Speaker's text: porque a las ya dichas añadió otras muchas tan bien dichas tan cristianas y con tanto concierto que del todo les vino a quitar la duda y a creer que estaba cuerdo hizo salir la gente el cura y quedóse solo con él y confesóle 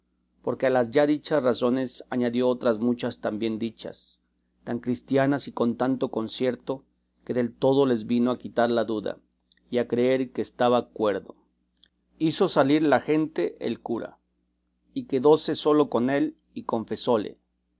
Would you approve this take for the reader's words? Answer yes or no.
no